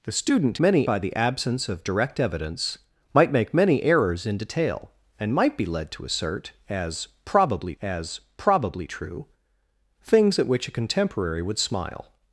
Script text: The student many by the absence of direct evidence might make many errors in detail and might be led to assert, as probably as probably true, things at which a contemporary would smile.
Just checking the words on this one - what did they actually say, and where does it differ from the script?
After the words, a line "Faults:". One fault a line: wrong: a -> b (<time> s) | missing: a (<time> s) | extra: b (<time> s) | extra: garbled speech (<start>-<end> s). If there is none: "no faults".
The student many by the absence of direct evidence might make many errors in detail and might be led to assert, as probably as probably true, things at which a contemporary would smile.
Faults:
no faults